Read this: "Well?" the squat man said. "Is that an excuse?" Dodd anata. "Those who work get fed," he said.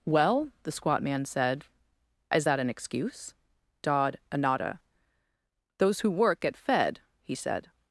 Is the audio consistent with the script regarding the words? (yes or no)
yes